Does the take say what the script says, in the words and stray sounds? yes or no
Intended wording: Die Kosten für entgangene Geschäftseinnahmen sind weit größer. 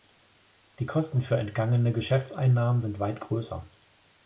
yes